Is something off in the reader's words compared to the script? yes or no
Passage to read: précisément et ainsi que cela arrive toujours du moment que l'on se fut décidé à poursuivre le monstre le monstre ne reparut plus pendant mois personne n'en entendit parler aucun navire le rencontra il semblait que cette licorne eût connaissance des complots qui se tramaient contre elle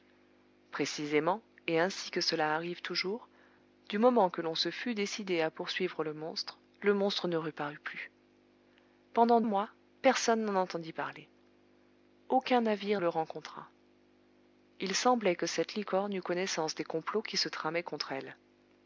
no